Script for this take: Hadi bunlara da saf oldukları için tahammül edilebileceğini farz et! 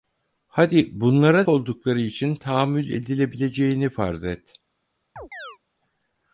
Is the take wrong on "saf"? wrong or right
wrong